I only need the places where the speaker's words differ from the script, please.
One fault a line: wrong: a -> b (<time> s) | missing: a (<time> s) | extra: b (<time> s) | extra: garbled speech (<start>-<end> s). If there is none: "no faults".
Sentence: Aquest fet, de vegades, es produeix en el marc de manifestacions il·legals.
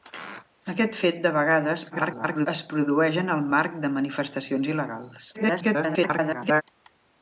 extra: garbled speech (1.9-2.5 s)
extra: garbled speech (5.3-6.6 s)